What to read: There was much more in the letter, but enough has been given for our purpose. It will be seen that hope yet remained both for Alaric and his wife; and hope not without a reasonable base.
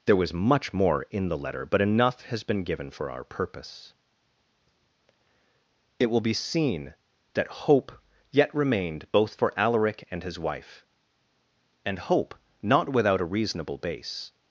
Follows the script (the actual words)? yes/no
yes